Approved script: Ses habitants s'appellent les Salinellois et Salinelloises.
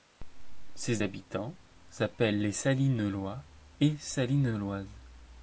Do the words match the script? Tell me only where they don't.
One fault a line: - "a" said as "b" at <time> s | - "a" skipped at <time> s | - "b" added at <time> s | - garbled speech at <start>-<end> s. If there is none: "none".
none